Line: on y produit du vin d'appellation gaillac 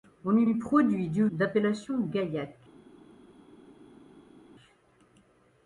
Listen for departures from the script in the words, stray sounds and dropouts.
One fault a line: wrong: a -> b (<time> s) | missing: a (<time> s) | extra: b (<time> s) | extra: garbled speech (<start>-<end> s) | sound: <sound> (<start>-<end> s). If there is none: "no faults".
extra: y (0.4 s)
missing: vin (1.3 s)